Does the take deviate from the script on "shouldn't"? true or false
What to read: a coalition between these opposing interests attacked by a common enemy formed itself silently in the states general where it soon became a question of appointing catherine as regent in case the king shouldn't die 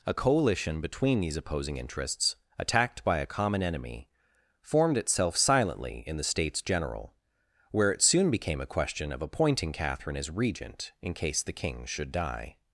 true